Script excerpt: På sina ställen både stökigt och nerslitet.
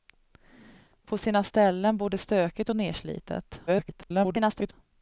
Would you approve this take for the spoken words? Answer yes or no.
no